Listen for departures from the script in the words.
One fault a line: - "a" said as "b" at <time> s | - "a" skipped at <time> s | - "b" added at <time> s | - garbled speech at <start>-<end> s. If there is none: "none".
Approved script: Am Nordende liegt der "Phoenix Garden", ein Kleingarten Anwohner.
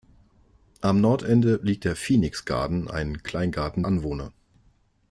none